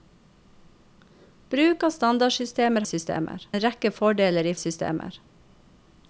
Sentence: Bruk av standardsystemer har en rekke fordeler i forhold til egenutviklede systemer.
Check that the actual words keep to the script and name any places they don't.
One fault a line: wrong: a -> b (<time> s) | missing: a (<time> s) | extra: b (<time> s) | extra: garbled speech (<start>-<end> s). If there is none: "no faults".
wrong: har -> systemer (2.9 s)
missing: forhold til egenutviklede (4.5 s)